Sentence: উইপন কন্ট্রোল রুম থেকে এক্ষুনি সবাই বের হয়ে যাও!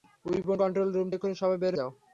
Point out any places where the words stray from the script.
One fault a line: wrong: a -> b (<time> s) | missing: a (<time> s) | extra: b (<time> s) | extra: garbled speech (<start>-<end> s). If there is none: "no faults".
missing: থেকে (1.1 s)
missing: হয়ে (1.7 s)